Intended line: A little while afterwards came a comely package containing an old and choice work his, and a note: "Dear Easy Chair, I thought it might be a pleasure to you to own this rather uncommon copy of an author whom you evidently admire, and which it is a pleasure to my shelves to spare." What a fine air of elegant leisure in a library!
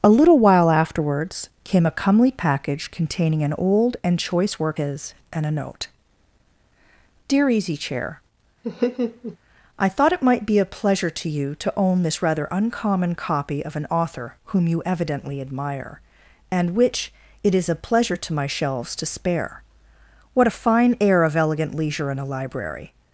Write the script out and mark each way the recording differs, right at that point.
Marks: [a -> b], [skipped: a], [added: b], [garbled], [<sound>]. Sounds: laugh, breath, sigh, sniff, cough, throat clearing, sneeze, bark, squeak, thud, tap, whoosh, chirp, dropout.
A little while afterwards came a comely package containing an old and choice work his, and a note: "Dear Easy Chair, [laugh] I thought it might be a pleasure to you to own this rather uncommon copy of an author whom you evidently admire, and which it is a pleasure to my shelves to spare." What a fine air of elegant leisure in a library!